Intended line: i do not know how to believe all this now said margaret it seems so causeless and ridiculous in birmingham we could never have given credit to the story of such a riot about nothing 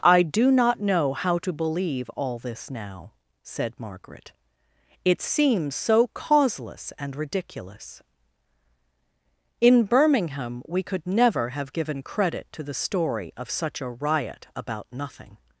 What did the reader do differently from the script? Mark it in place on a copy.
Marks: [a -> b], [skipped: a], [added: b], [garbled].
i do not know how to believe all this now said margaret it seems so causeless and ridiculous in birmingham we could never have given credit to the story of such a riot about nothing